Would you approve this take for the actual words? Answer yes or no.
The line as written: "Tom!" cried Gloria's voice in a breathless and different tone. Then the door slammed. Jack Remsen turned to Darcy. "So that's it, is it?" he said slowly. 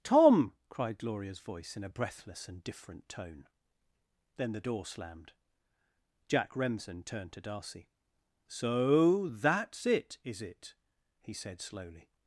yes